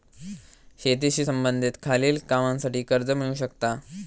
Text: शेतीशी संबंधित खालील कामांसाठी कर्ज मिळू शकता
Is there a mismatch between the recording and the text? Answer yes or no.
no